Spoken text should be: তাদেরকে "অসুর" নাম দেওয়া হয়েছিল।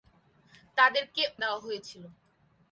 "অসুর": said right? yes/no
no